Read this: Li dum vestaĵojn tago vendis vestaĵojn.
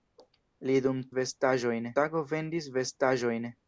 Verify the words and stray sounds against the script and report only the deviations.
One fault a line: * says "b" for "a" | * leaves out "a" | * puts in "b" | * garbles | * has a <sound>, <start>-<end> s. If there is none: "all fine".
all fine